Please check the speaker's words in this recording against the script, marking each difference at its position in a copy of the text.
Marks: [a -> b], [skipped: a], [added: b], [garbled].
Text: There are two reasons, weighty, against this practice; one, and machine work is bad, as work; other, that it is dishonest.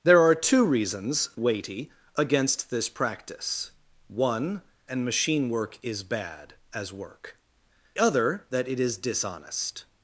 There are two reasons, weighty, against this practice; one, and machine work is bad, as work; other, that it is dishonest.